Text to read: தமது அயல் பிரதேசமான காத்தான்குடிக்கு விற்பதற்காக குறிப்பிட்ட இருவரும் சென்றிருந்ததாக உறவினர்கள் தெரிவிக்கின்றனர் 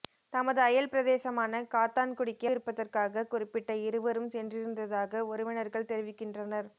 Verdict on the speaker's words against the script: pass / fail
pass